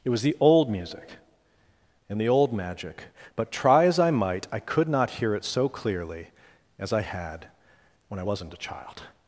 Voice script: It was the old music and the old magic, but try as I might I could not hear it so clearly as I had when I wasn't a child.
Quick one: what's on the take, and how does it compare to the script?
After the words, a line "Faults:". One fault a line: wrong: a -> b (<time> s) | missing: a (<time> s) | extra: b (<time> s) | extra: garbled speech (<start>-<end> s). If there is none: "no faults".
It was the old music and the old magic, but try as I might I could not hear it so clearly as I had when I wasn't a child.
Faults:
no faults